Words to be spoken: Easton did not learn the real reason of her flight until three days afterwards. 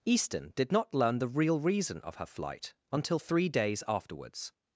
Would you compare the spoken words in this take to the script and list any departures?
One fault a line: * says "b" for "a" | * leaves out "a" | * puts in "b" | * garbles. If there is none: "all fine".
all fine